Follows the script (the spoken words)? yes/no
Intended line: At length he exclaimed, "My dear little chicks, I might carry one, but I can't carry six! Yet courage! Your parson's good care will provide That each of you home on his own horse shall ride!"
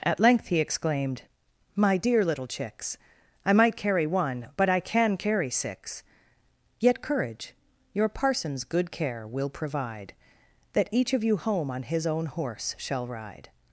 no